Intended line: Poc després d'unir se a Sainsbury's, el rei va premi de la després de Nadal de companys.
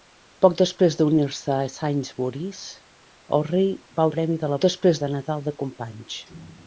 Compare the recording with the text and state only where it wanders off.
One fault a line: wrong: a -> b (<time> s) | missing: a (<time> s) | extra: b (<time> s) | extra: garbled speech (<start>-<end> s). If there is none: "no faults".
no faults